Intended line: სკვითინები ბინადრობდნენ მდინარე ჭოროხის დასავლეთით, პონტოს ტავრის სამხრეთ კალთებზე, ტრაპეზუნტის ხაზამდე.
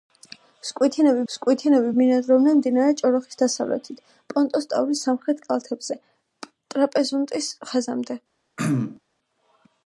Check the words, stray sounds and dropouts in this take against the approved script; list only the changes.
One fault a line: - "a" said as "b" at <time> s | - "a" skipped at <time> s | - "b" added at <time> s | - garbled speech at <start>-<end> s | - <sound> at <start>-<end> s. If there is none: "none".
- "სკვითინები" added at 1.3 s
- throat clearing at 8.6-9.0 s